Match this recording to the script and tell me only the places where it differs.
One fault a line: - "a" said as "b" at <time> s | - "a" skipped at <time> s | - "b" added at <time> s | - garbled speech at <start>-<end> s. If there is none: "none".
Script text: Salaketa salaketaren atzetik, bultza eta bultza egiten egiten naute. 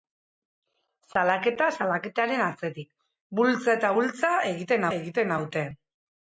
none